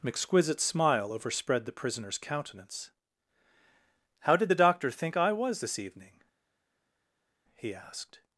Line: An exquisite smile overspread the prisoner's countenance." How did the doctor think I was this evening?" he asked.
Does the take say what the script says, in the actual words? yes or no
yes